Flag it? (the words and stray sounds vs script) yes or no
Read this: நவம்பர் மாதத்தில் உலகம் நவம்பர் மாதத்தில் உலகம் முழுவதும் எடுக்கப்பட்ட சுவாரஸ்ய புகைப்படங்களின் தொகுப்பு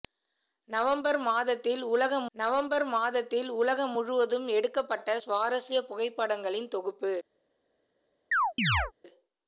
yes